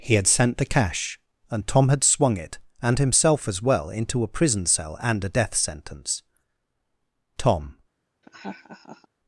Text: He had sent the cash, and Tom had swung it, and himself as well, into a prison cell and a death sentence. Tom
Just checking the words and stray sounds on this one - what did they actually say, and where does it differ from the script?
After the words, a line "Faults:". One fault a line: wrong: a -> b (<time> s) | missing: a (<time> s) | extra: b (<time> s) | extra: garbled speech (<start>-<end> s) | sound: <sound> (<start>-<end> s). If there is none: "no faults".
He had sent the cash, and Tom had swung it, and himself as well, into a prison cell and a death sentence. Tom
Faults:
sound: laugh (8.2-9.1 s)